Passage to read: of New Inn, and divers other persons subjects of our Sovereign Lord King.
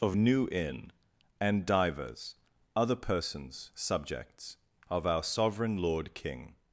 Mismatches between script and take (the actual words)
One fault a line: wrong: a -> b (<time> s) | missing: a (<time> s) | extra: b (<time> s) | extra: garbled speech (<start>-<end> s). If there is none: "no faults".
no faults